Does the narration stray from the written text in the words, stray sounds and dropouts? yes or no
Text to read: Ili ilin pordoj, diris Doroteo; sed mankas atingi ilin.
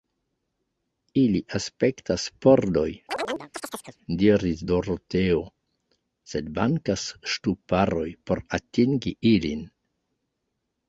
yes